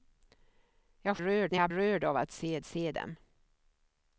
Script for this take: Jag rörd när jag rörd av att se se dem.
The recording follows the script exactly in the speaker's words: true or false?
true